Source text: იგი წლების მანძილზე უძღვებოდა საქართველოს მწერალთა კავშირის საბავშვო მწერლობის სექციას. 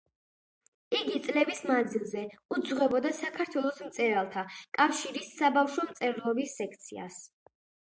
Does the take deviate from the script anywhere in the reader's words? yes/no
no